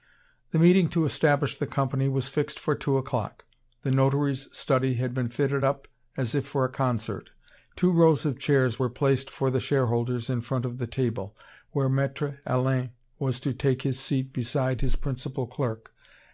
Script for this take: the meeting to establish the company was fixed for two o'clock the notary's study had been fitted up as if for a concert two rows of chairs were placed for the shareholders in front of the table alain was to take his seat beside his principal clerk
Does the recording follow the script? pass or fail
fail